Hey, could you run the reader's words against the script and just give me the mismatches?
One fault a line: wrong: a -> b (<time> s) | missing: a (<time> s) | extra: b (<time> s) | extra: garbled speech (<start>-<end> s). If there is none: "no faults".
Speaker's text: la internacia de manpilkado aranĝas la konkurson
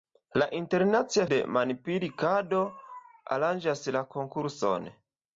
no faults